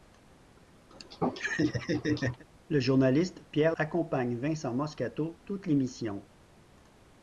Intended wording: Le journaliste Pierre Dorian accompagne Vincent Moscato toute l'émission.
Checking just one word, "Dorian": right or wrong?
wrong